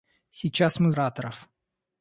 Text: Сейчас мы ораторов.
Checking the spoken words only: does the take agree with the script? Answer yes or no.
yes